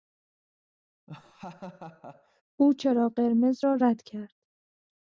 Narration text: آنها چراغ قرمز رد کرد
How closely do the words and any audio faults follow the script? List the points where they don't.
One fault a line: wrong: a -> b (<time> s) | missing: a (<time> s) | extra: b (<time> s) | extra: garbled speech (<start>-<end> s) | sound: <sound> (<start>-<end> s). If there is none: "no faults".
sound: laugh (1.1-2.4 s)
wrong: آنها -> او (2.6 s)
extra: را (3.6 s)